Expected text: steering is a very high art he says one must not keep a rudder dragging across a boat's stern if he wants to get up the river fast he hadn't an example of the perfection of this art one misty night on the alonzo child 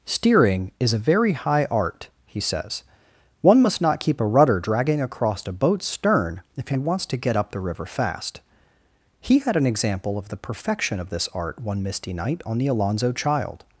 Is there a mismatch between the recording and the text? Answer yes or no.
yes